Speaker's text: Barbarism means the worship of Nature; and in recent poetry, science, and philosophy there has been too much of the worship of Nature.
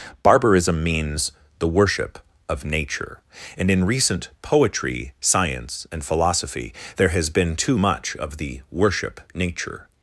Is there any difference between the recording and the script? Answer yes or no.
yes